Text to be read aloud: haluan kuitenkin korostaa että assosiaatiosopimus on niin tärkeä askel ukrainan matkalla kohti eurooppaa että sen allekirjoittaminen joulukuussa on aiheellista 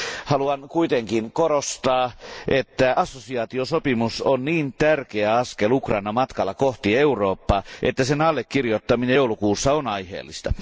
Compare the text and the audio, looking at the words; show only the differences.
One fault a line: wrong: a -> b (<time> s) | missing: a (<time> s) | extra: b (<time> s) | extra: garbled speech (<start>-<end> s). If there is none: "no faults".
no faults